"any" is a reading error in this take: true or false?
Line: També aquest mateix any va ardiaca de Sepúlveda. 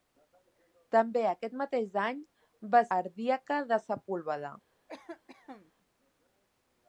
false